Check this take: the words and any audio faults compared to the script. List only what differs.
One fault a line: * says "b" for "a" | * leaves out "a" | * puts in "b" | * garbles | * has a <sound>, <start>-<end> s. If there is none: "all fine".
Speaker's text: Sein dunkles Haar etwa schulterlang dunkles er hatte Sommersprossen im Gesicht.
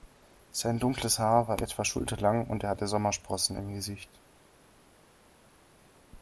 * puts in "war"
* says "und" for "dunkles"